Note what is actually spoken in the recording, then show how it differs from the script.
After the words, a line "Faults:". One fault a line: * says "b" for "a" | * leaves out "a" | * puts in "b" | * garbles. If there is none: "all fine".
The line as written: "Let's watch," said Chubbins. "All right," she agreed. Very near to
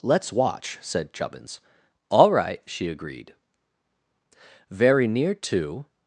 "Let's watch," said Chubbins. "All right," she agreed. Very near to
Faults:
all fine